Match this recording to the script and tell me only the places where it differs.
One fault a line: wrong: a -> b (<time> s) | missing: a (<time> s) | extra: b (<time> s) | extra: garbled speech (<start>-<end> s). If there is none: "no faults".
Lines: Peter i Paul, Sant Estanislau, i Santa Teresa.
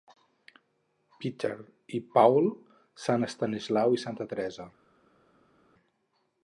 no faults